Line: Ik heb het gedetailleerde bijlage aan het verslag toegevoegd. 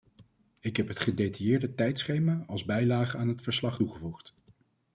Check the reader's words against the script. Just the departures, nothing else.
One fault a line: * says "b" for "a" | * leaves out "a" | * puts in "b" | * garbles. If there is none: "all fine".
* puts in "tijdschema als"